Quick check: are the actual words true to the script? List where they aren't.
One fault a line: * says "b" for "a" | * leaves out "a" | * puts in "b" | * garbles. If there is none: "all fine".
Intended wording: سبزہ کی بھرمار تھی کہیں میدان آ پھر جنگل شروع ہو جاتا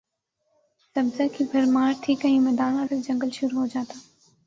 all fine